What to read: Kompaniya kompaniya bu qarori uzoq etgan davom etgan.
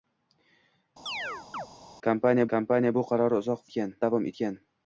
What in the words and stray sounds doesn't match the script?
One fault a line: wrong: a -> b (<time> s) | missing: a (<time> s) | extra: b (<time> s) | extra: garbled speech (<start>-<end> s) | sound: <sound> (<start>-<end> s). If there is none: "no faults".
sound: chirp (1.1-1.7 s)